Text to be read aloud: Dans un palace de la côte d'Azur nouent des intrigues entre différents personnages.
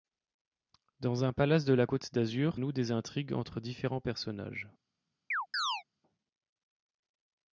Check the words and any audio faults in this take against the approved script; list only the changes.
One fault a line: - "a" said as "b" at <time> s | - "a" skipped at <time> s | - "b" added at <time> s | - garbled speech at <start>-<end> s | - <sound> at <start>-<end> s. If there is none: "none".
- chirp at 5.3-5.8 s